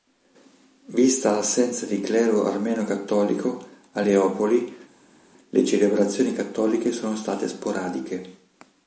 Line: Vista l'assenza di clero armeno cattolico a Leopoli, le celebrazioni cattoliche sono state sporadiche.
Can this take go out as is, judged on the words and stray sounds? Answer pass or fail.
pass